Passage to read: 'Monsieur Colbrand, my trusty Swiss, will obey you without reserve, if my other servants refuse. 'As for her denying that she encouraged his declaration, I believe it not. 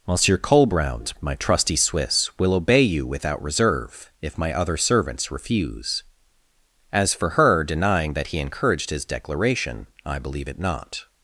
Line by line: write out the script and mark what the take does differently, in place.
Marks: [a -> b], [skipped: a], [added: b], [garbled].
'Monsieur Colbrand, my trusty Swiss, will obey you without reserve, if my other servants refuse. 'As for her denying that [she -> he] encouraged his declaration, I believe it not.